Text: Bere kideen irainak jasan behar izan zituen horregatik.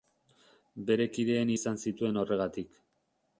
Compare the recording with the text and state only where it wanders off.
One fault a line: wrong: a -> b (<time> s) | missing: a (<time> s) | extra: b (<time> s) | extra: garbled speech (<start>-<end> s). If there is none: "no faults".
missing: irainak jasan behar (1.5 s)